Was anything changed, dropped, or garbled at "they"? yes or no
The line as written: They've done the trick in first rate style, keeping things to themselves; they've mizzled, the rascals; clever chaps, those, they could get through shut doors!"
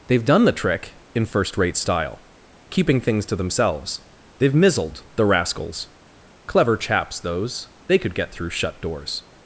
no